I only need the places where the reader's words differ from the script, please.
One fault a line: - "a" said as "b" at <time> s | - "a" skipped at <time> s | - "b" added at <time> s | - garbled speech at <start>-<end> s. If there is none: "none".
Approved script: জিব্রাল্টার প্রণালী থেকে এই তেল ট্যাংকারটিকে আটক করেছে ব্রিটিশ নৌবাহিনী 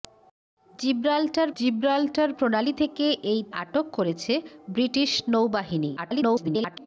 - "জিব্রাল্টার" added at 1.6 s
- "তেল ট্যাংকারটিকে" skipped at 3.4 s
- garbled speech at 6.0-6.9 s